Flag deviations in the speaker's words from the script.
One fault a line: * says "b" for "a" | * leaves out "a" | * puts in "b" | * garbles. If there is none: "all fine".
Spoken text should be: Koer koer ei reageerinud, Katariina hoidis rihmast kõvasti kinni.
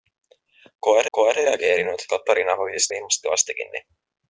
all fine